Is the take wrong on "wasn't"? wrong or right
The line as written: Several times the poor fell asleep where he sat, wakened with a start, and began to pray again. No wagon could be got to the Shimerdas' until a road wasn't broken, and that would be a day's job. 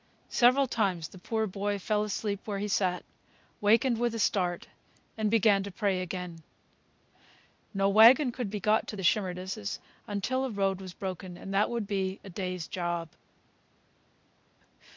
wrong